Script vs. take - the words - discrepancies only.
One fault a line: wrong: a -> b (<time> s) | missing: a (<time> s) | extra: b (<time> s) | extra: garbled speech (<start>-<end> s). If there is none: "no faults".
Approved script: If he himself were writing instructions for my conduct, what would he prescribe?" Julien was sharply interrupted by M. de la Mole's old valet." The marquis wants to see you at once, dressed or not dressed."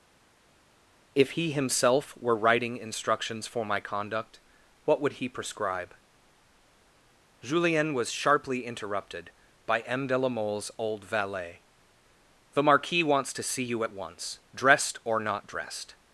no faults